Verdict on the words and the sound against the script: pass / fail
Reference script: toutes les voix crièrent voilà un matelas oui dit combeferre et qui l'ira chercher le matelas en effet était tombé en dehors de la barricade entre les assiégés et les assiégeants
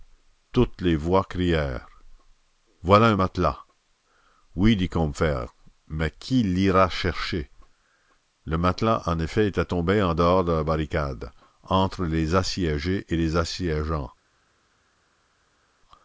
fail